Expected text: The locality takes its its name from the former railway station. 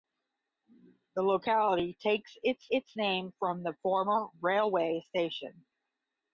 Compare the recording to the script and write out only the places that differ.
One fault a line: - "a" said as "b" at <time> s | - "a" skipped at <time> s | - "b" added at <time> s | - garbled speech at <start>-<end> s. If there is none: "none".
none